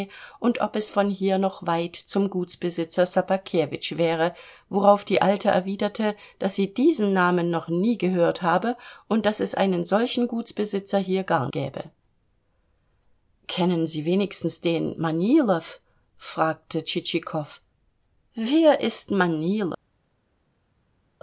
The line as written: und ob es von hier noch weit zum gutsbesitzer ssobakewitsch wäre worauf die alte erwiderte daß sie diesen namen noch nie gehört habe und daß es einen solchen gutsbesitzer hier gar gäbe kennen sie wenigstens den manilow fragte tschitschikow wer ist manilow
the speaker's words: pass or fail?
pass